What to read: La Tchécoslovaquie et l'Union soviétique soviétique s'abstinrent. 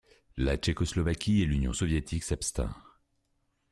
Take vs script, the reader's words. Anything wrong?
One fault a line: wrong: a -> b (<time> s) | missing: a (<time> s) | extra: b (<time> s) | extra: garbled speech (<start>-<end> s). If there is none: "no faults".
missing: soviétique (2.2 s)